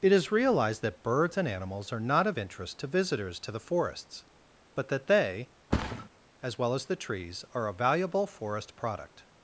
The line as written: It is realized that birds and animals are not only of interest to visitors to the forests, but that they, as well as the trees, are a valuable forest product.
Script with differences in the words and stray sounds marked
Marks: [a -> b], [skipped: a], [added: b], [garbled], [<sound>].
It is realized that birds and animals are not [skipped: only] of interest to visitors to the forests, but that they, [thud] as well as the trees, are a valuable forest product.